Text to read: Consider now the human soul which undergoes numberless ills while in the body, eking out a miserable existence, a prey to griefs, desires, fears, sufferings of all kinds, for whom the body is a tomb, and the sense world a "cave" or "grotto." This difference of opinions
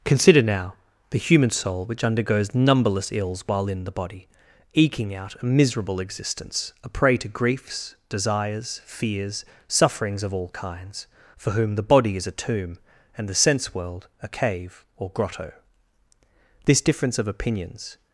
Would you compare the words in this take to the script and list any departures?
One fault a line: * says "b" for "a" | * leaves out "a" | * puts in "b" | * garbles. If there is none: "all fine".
all fine